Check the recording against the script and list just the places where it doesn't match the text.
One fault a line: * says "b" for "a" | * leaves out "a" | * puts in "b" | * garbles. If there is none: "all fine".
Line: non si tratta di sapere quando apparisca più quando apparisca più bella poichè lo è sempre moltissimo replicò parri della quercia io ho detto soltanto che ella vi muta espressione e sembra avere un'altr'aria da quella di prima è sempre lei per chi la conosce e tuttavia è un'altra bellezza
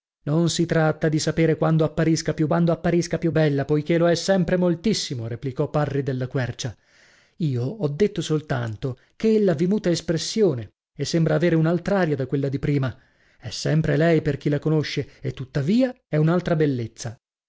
all fine